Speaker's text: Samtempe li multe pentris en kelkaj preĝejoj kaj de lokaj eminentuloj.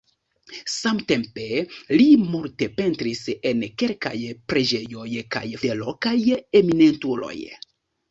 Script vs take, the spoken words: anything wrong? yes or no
no